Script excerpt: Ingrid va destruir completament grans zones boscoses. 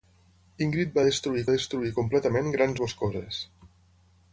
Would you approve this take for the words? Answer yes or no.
no